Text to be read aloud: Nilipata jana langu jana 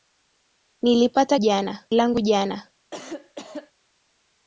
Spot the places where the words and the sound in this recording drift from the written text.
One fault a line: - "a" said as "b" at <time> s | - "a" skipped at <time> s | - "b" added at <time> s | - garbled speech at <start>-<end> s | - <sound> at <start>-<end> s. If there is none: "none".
- cough at 2.9-3.7 s